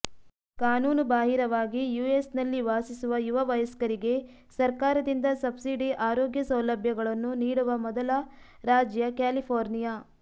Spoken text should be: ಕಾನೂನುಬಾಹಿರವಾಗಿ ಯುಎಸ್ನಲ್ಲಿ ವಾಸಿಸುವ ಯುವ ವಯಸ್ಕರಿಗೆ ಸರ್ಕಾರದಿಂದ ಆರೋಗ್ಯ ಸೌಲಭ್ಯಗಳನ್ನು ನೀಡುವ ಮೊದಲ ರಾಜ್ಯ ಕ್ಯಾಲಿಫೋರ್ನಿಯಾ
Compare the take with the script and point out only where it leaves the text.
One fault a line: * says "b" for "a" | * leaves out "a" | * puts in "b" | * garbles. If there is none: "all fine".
* puts in "ಸಬ್ಸಿಡಿ"